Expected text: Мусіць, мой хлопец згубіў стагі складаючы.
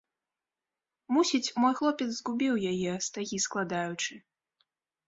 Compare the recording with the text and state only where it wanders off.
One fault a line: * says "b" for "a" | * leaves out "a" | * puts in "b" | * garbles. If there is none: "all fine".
* puts in "яе"